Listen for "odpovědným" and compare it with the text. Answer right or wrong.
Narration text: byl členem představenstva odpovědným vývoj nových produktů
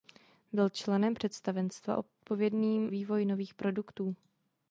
right